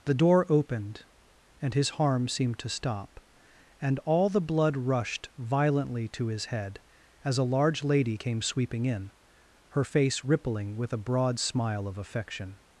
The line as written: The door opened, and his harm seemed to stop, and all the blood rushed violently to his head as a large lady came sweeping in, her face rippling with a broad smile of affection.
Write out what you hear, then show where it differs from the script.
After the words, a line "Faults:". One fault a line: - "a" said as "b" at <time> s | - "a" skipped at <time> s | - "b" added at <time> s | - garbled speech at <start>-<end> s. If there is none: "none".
The door opened, and his harm seemed to stop, and all the blood rushed violently to his head as a large lady came sweeping in, her face rippling with a broad smile of affection.
Faults:
none